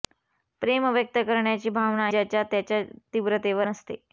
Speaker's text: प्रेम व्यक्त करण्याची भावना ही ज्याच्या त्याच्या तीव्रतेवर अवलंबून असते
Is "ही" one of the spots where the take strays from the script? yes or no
yes